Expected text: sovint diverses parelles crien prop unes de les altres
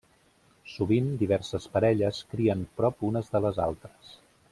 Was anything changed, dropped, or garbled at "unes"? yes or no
no